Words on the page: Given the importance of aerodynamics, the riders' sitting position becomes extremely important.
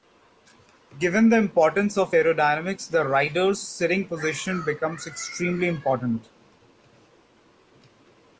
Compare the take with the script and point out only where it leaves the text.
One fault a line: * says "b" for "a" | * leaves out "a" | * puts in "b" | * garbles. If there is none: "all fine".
all fine